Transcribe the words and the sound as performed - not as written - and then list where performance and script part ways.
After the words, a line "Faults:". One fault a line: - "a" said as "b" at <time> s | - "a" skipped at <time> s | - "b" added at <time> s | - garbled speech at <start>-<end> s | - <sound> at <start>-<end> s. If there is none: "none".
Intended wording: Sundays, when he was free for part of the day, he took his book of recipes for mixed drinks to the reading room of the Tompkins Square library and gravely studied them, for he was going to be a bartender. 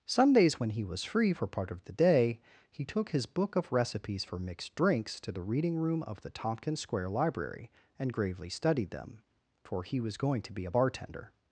Sundays, when he was free for part of the day, he took his book of recipes for mixed drinks to the reading room of the Tompkins Square library and gravely studied them, for he was going to be a bartender.
Faults:
none